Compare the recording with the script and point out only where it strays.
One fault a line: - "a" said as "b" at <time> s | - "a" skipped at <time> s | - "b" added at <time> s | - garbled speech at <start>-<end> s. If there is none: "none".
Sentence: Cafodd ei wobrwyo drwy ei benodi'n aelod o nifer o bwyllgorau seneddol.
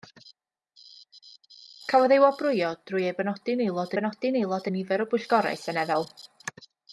- "benodi'n aelod" added at 4.0 s